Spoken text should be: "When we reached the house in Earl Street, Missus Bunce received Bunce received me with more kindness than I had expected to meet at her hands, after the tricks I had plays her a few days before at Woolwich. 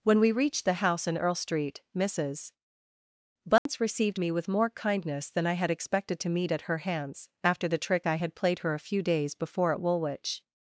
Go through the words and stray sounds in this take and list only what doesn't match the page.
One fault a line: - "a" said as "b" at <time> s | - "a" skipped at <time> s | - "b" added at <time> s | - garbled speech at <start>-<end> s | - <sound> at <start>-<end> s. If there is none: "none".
- dropout at 3.6-3.7 s
- "Bunce received" skipped at 4.2 s
- "tricks" said as "trick" at 7.8 s
- "plays" said as "played" at 8.4 s